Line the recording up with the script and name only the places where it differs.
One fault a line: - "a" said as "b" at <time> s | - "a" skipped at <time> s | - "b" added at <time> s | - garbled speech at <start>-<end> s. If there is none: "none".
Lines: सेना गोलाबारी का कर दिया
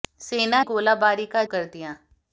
none